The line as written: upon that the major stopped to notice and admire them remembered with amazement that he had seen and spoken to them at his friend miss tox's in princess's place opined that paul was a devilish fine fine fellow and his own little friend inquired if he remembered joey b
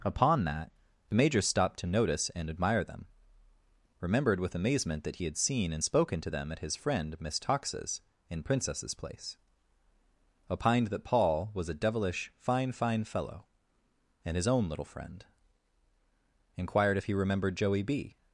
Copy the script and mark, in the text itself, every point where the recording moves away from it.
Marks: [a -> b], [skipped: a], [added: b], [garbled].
upon that the major stopped to notice and admire them remembered with amazement that he had seen and spoken to them at his friend miss tox's in princess's place opined that paul was a devilish fine fine fellow and his own little friend inquired if he remembered joey b